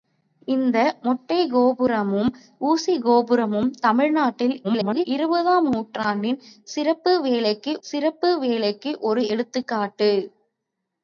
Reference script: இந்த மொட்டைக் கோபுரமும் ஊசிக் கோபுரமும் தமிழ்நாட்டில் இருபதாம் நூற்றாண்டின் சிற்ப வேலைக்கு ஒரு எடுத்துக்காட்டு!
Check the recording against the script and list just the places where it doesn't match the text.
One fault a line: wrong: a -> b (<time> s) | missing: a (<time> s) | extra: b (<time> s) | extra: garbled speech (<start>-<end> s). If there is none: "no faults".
extra: garbled speech (4.6-5.0 s)
extra: சிற்ப வேலைக்கு (7.8 s)